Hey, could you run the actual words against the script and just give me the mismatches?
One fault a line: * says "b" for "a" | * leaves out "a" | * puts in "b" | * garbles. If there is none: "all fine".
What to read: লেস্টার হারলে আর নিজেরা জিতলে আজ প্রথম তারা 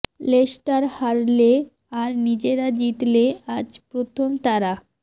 all fine